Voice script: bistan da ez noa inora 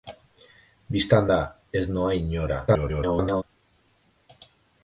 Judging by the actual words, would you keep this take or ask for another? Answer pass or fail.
fail